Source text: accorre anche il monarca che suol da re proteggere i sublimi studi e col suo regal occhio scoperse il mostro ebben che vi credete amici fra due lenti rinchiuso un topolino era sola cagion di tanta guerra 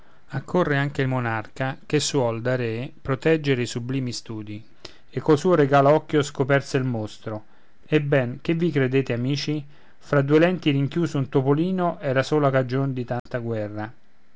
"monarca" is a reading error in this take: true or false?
false